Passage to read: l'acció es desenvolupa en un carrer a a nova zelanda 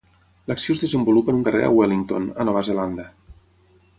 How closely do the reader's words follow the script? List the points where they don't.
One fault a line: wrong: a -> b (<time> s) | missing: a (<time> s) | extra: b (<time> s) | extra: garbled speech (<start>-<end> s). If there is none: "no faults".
extra: wellington (1.8 s)